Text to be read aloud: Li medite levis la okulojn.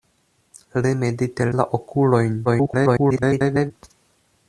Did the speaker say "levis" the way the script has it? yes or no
no